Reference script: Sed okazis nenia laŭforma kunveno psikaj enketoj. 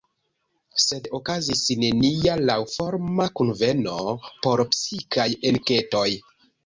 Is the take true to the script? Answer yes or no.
no